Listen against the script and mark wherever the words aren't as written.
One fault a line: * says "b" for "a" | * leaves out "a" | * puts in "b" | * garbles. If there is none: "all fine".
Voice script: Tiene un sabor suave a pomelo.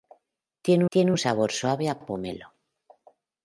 * puts in "tiene"
* puts in "a"